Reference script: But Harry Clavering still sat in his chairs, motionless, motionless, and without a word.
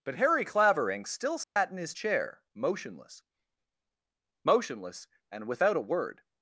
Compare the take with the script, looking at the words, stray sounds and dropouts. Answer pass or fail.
fail